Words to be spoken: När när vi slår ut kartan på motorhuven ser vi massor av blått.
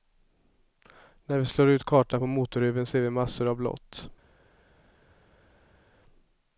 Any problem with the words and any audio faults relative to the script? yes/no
yes